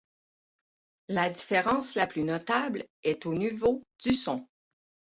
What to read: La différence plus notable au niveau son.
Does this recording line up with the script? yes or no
no